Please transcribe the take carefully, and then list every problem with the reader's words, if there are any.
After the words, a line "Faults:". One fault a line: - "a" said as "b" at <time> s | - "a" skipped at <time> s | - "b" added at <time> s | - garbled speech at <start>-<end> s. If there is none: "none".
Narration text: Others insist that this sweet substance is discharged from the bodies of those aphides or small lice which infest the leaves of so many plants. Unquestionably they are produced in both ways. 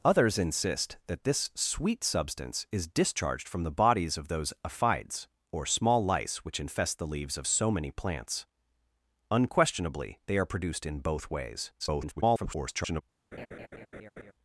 Others insist that this sweet substance is discharged from the bodies of those aphides or small lice which infest the leaves of so many plants. Unquestionably they are produced in both ways. [garbled]
Faults:
- garbled speech at 11.8-13.0 s